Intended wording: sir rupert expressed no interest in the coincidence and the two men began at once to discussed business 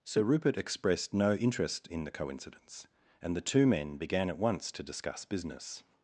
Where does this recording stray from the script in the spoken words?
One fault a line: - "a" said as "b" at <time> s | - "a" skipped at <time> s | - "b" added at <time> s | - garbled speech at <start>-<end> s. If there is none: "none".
- "discussed" said as "discuss" at 4.8 s